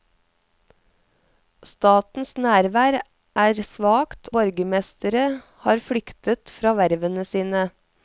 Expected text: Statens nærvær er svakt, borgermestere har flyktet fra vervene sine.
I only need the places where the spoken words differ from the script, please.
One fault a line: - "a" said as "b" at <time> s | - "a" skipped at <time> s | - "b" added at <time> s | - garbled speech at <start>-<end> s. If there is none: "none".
none